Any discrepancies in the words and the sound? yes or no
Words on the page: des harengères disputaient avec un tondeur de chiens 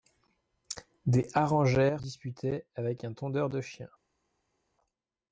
no